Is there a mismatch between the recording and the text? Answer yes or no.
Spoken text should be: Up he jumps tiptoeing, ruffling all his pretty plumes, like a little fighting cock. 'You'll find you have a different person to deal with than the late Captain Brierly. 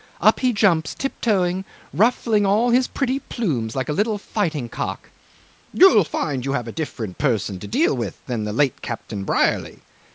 no